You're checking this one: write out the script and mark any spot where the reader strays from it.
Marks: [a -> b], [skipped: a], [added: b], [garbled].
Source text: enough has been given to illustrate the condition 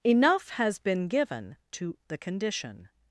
enough has been given to [skipped: illustrate] the condition